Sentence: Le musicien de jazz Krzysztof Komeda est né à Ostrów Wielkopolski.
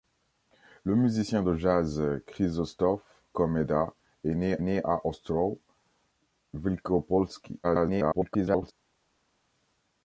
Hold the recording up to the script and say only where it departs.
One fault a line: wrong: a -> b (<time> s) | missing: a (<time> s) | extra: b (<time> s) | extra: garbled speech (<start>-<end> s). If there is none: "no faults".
extra: né (4.6 s)
extra: garbled speech (7.6-8.7 s)